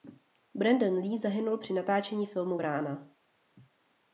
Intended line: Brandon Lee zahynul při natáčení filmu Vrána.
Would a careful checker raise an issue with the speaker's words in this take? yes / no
no